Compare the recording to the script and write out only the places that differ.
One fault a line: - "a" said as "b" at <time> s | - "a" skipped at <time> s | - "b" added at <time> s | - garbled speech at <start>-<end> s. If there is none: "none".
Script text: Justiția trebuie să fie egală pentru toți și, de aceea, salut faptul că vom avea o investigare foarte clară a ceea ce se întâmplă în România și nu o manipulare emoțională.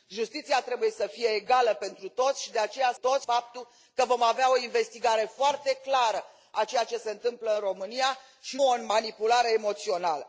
- "salut" said as "toți" at 3.0 s
- "nu" skipped at 8.6 s